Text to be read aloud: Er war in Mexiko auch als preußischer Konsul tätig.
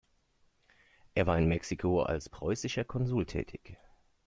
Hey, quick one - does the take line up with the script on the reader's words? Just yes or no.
no